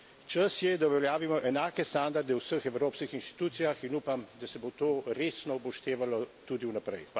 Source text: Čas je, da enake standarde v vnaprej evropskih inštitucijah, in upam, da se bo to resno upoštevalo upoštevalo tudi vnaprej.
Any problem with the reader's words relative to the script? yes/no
yes